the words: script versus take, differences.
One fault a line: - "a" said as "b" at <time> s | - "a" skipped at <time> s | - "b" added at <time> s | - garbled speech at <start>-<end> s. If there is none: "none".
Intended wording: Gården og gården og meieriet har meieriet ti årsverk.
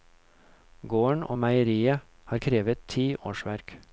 - "gården og" skipped at 1.4 s
- "meieriet" said as "krevet" at 2.4 s